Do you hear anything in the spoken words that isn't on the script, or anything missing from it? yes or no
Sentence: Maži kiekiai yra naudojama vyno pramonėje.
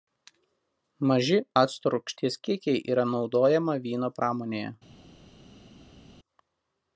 yes